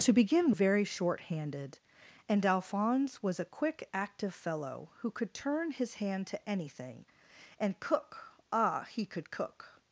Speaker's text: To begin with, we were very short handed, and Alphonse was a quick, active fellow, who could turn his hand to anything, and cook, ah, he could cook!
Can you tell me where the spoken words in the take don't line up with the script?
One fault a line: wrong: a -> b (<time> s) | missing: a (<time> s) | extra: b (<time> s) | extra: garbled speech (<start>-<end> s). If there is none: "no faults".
missing: with we were (0.5 s)